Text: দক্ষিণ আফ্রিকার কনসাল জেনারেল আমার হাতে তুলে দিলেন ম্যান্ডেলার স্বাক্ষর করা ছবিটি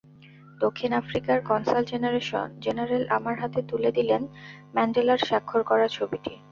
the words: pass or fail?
pass